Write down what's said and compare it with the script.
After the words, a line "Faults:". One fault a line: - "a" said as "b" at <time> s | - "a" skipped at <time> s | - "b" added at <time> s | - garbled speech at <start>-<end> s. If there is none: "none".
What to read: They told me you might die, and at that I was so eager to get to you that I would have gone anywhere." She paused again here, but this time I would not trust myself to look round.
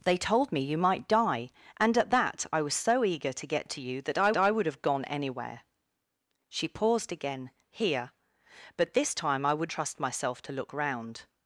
They told me you might die, and at that I was so eager to get to you that I I would have gone anywhere." She paused again here, but this time I would trust myself to look round.
Faults:
- "I" added at 4.4 s
- "not" skipped at 9.7 s